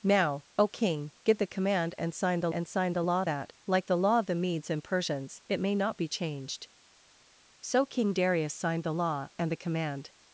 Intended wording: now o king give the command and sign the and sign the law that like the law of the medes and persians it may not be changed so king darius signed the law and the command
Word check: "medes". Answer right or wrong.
right